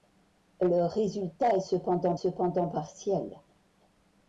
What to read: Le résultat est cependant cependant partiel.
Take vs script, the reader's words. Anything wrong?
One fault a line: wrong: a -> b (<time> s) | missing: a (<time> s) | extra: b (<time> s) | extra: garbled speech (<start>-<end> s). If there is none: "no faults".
no faults